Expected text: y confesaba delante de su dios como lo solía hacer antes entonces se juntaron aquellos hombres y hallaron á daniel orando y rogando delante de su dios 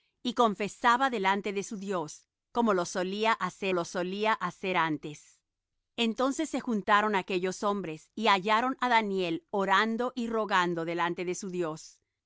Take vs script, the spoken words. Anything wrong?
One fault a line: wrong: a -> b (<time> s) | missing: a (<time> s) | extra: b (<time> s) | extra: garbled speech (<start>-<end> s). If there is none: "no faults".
extra: lo solía hacer (3.7 s)